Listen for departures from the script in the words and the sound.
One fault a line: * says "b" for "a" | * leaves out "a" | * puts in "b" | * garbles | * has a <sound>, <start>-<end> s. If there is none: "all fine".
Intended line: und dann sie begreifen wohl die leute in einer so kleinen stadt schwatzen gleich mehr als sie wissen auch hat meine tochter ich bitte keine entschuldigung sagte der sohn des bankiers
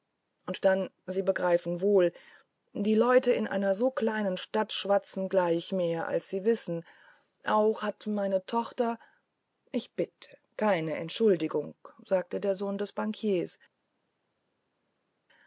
all fine